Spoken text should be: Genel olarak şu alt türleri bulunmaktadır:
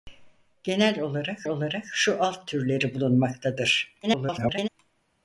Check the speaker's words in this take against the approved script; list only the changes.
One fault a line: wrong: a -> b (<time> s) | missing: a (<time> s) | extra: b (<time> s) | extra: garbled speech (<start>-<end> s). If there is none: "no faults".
extra: olarak (1.5 s)
extra: garbled speech (4.0-4.7 s)